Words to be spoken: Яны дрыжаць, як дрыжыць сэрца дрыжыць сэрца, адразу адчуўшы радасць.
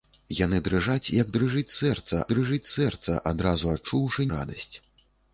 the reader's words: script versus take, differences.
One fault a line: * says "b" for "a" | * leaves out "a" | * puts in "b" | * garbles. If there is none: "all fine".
all fine